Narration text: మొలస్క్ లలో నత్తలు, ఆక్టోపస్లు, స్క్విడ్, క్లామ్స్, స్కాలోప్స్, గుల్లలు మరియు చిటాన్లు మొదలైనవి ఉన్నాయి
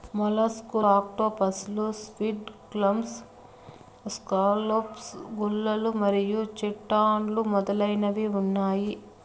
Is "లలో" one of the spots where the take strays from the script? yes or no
yes